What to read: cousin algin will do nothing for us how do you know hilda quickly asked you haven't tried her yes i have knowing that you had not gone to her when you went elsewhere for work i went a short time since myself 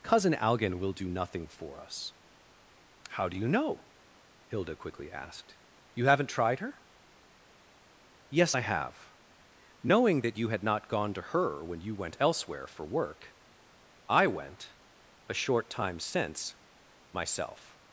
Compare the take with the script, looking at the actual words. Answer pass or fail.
pass